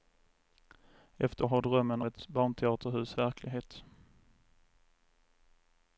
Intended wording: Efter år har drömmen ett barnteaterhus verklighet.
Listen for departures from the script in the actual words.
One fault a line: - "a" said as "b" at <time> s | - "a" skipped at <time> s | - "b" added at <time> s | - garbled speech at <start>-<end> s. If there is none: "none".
none